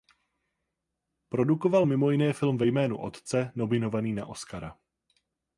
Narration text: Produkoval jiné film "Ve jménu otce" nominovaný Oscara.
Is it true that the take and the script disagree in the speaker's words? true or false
true